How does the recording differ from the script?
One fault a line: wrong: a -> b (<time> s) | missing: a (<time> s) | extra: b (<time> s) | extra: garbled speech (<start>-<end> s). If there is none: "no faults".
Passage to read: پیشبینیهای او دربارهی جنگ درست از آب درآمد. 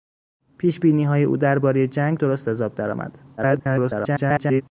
extra: garbled speech (3.4-4.6 s)